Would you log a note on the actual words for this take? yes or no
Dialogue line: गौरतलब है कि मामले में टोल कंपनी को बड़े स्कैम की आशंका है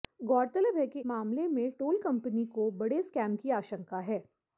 no